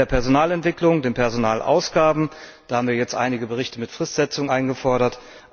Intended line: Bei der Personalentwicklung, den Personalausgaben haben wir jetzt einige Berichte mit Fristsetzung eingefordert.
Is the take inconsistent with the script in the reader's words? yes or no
no